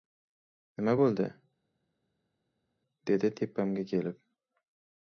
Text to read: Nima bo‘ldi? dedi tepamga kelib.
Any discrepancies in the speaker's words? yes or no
no